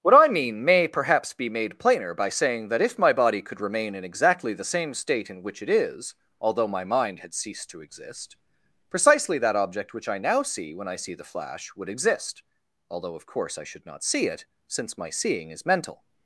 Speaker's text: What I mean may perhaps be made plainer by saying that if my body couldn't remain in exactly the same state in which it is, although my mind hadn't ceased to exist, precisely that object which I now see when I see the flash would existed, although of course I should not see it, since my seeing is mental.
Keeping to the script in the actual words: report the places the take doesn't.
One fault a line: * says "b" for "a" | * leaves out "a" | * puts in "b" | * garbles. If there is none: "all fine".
* says "could" for "couldn't"
* says "had" for "hadn't"
* says "exist" for "existed"